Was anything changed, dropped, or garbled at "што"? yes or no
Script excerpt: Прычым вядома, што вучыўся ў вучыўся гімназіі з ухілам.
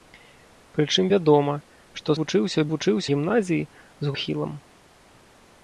no